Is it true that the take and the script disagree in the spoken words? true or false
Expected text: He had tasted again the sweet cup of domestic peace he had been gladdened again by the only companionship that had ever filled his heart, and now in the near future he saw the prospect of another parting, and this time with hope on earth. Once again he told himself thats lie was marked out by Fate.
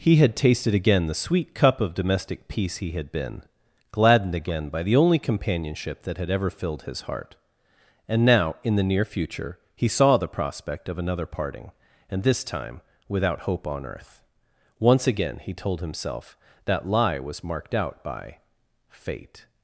true